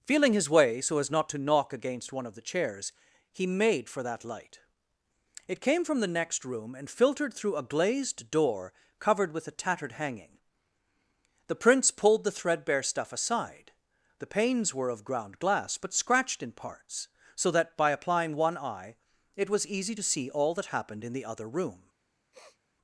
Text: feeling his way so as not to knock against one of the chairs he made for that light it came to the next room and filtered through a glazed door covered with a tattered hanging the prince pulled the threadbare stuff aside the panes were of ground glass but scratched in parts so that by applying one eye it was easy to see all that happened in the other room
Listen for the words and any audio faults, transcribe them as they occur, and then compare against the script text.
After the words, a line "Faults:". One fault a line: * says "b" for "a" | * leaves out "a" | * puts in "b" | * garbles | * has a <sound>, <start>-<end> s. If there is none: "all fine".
feeling his way so as not to knock against one of the chairs he made for that light it came from the next room and filtered through a glazed door covered with a tattered hanging the prince pulled the threadbare stuff aside the panes were of ground glass but scratched in parts so that by applying one eye it was easy to see all that happened in the other room
Faults:
* says "from" for "to"
* has a sniff, 22.3-22.6 s